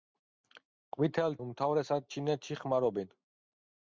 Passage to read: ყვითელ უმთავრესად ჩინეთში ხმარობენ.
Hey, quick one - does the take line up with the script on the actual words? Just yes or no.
yes